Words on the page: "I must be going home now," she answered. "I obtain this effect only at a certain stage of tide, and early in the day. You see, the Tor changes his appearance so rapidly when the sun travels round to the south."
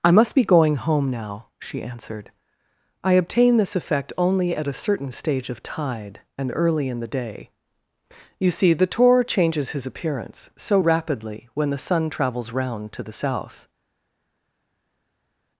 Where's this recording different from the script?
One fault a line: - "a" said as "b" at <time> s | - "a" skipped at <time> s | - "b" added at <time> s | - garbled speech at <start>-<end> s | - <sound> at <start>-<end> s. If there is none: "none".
none